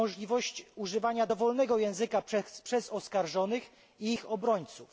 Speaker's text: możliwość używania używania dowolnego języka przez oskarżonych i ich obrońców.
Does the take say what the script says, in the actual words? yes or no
no